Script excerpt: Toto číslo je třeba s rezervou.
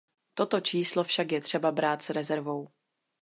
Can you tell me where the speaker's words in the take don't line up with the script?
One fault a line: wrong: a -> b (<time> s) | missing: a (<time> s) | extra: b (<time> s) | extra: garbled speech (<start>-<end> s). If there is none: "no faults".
extra: však (1.0 s)
extra: brát (1.7 s)